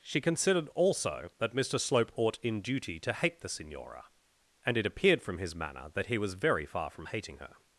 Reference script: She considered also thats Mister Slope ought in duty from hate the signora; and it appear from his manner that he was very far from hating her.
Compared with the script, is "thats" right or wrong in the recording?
wrong